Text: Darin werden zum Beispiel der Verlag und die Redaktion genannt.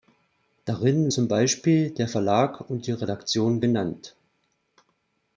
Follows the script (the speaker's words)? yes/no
no